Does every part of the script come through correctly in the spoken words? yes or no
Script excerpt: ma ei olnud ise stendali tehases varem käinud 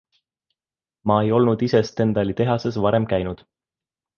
yes